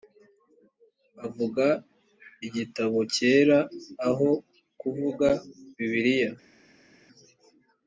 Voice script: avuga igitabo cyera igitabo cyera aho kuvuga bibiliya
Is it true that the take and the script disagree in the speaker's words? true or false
true